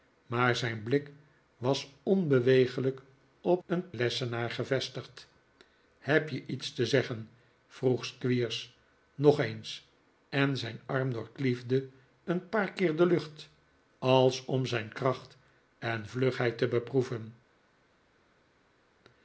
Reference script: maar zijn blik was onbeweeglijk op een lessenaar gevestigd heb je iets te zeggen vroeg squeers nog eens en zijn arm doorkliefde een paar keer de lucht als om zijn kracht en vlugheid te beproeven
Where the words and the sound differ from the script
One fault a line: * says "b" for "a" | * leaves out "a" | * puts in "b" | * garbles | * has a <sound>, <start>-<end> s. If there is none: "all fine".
all fine